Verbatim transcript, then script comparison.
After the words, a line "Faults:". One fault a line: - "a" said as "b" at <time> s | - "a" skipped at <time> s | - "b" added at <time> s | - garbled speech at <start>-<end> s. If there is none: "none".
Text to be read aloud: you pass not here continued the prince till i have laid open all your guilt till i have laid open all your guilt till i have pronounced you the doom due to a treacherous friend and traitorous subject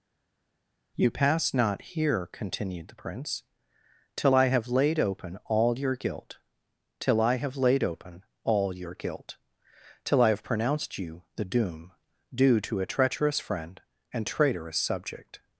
you pass not here continued the prince till i have laid open all your guilt till i have laid open all your guilt till i have pronounced you the doom due to a treacherous friend and traitorous subject
Faults:
none